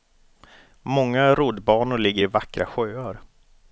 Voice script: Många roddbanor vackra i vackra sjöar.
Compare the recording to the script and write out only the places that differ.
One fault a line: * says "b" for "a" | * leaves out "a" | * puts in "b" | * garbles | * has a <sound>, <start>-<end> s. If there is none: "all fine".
* says "ligger" for "vackra"